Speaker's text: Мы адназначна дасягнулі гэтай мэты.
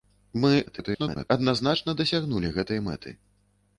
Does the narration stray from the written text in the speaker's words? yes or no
yes